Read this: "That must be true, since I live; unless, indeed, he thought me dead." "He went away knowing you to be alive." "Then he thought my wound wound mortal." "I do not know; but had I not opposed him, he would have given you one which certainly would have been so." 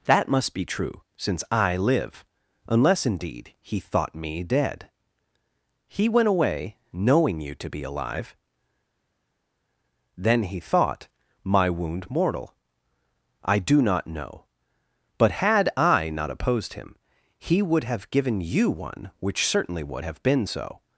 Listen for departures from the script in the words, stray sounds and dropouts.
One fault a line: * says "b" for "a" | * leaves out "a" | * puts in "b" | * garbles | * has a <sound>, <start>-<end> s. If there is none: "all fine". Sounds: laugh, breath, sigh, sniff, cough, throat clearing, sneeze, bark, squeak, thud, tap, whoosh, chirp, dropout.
* leaves out "wound"